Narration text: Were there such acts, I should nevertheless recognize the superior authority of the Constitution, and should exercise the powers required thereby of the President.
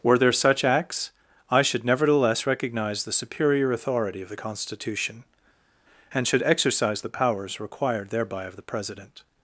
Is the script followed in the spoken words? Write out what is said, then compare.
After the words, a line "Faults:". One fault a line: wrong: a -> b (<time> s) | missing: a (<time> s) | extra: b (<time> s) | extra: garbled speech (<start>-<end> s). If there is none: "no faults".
Were there such acts, I should nevertheless recognize the superior authority of the Constitution, and should exercise the powers required thereby of the President.
Faults:
no faults